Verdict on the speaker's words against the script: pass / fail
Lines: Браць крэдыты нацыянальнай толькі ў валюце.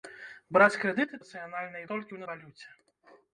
pass